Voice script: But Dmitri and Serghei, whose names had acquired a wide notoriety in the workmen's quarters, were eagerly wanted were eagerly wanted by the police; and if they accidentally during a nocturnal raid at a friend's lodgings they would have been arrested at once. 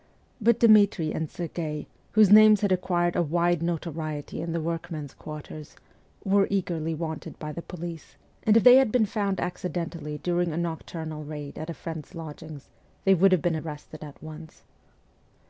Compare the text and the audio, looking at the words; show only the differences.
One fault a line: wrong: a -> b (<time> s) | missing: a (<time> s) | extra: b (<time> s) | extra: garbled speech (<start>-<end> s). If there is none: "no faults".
missing: were eagerly wanted (7.4 s)
extra: had been found (8.8 s)